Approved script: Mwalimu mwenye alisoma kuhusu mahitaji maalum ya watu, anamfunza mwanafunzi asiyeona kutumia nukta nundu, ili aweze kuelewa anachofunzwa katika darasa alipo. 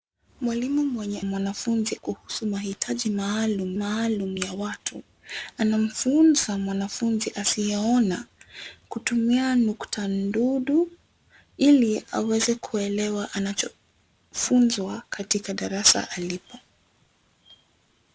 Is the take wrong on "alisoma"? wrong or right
wrong